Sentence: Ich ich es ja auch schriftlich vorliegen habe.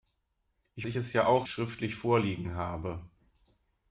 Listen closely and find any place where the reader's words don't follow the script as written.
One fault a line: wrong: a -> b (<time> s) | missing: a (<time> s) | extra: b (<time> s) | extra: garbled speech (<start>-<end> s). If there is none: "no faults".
no faults